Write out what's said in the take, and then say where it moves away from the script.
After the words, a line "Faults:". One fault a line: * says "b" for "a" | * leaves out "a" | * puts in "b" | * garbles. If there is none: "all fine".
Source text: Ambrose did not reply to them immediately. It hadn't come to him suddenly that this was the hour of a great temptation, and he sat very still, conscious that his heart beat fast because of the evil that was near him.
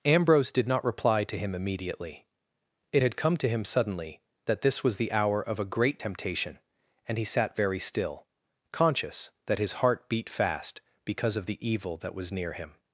Ambrose did not reply to him immediately. It had come to him suddenly that this was the hour of a great temptation, and he sat very still, conscious that his heart beat fast because of the evil that was near him.
Faults:
* says "him" for "them"
* says "had" for "hadn't"